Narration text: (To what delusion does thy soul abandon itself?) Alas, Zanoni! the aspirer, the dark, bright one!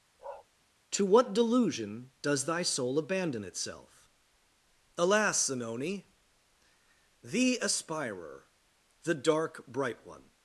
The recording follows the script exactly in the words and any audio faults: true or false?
false